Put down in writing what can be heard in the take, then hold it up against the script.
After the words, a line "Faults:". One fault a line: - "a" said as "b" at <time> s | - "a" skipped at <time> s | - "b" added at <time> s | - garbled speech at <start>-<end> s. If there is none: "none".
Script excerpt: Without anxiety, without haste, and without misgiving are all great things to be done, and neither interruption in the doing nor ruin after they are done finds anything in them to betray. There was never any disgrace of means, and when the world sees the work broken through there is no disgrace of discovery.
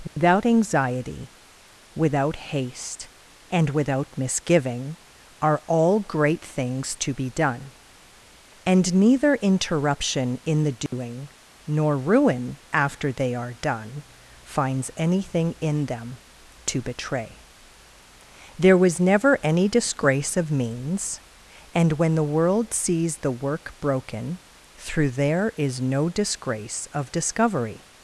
Without anxiety, without haste, and without misgiving are all great things to be done, and neither interruption in the doing nor ruin after they are done finds anything in them to betray. There was never any disgrace of means, and when the world sees the work broken through there is no disgrace of discovery.
Faults:
none